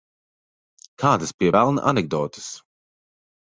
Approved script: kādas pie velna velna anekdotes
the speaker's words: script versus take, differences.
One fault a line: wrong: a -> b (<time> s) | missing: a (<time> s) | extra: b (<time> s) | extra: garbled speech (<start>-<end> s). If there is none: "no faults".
missing: velna (1.9 s)